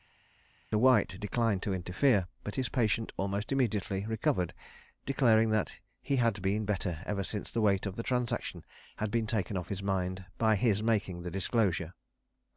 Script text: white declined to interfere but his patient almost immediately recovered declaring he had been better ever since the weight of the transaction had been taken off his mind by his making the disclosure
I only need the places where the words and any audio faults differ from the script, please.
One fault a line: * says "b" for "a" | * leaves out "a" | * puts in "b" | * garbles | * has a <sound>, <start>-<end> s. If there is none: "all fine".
* puts in "that"